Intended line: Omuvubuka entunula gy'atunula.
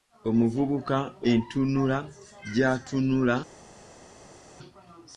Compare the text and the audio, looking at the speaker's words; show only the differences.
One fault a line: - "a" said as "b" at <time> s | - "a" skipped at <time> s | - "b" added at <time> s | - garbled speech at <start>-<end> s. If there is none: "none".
none